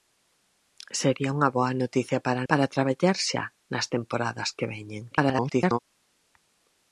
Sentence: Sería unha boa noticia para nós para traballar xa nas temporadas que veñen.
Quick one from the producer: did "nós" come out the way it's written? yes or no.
no